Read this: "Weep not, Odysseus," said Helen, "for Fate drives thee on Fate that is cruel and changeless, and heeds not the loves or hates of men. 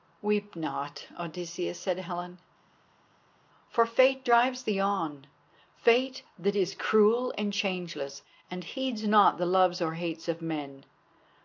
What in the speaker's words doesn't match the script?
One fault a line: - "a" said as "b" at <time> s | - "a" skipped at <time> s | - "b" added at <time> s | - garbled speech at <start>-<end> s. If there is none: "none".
none